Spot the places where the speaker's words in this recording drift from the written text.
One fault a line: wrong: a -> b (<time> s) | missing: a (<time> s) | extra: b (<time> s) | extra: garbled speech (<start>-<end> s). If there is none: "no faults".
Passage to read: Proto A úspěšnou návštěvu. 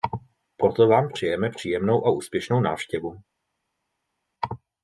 extra: Vám přejeme příjemnou (0.9 s)